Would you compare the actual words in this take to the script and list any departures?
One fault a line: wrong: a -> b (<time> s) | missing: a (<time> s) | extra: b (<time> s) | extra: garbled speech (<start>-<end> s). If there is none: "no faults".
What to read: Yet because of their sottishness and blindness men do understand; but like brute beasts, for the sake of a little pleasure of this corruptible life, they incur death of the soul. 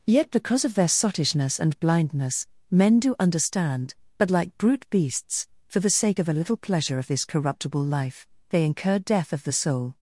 no faults